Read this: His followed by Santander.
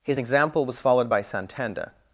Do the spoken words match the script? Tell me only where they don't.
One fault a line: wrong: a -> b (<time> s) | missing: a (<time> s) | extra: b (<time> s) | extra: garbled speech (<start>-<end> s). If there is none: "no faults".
extra: example was (0.2 s)